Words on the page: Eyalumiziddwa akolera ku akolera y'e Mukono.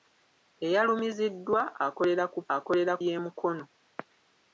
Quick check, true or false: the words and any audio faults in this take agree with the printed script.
true